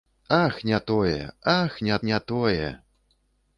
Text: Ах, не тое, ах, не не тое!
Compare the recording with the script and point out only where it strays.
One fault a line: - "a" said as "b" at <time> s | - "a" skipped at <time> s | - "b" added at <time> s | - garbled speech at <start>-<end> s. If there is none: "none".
none